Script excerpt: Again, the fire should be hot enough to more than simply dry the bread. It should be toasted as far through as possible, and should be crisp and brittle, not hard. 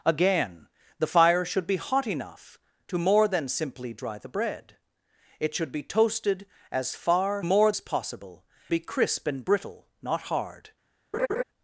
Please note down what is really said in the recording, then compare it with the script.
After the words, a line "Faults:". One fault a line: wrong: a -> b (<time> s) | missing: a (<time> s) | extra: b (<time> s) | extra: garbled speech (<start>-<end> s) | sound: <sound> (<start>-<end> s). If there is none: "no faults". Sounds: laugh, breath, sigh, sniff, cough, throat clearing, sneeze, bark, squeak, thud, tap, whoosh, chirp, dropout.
Again, the fire should be hot enough to more than simply dry the bread. It should be toasted as far more as possible, be crisp and brittle, not hard.
Faults:
wrong: through -> more (7.4 s)
missing: and should (8.4 s)
sound: laugh (11.1-11.4 s)